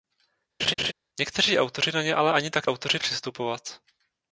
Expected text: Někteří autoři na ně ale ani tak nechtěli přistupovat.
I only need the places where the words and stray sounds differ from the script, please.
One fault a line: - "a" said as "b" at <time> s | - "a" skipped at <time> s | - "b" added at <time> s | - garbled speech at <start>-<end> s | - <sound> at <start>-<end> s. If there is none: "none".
- laugh at 0.6-0.9 s
- "nechtěli" said as "autoři" at 2.7 s